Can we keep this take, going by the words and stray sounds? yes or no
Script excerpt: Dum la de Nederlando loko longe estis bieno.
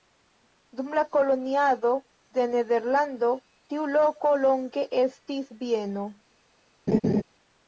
no